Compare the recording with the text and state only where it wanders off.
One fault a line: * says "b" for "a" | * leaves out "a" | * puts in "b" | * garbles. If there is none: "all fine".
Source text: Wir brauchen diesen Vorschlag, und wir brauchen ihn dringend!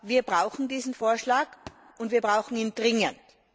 all fine